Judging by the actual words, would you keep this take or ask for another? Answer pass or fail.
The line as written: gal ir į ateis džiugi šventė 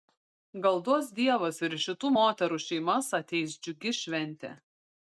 fail